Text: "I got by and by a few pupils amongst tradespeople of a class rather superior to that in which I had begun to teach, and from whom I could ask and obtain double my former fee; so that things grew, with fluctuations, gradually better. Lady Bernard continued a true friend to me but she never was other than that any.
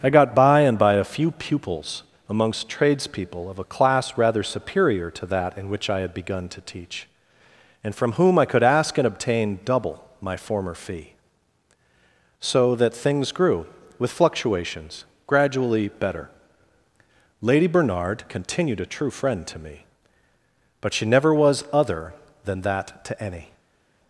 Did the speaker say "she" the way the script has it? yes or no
yes